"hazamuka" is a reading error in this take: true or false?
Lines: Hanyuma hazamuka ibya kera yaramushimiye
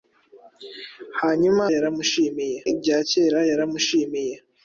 true